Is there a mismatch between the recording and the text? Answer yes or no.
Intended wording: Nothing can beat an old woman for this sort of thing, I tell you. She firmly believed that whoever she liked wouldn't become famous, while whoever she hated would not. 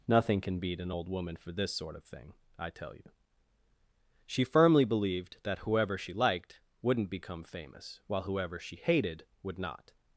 no